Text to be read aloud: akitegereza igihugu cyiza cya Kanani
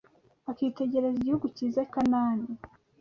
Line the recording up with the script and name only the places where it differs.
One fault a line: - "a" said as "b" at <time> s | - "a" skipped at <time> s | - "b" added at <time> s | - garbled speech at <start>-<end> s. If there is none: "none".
- "cya" skipped at 1.8 s